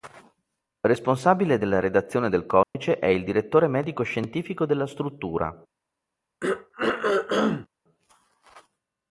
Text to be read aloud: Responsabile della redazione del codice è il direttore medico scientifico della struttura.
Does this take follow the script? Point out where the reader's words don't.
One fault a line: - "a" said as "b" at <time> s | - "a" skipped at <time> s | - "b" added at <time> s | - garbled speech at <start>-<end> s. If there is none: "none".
none